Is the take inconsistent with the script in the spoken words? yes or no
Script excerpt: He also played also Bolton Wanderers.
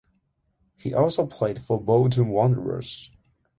yes